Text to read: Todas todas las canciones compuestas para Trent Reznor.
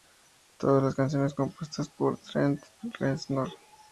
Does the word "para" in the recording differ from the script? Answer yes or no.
yes